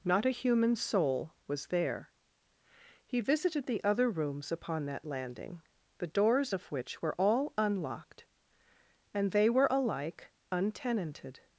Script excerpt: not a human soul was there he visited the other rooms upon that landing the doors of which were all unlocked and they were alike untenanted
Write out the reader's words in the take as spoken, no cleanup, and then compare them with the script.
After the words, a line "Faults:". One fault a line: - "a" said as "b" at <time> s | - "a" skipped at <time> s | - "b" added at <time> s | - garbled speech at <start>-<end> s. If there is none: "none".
not a human soul was there he visited the other rooms upon that landing the doors of which were all unlocked and they were alike untenanted
Faults:
none